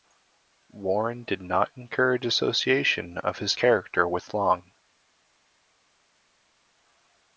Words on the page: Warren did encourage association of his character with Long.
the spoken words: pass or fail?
fail